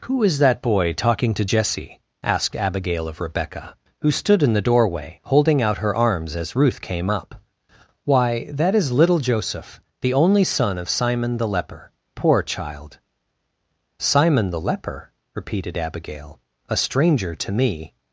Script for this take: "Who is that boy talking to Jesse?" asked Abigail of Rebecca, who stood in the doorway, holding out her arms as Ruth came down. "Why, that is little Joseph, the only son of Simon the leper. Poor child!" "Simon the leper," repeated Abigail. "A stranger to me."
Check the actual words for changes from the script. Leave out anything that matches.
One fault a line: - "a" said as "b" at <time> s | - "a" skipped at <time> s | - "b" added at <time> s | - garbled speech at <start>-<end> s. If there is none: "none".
- "down" said as "up" at 7.1 s